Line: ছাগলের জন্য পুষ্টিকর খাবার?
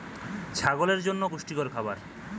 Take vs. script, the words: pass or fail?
pass